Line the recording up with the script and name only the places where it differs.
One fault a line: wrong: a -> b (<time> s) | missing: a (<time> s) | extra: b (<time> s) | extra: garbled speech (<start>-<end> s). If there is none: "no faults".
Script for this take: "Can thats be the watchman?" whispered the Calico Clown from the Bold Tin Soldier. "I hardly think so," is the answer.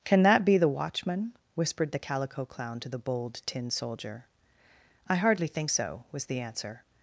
wrong: thats -> that (0.2 s)
wrong: from -> to (2.8 s)
wrong: is -> was (6.1 s)